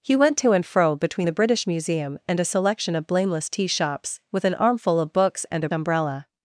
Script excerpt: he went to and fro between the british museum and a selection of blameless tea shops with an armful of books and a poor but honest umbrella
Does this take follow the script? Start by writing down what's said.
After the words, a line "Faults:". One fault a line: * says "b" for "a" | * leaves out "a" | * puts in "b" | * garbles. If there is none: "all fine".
he went to and fro between the british museum and a selection of blameless tea shops with an armful of books and a umbrella
Faults:
* leaves out "poor but honest"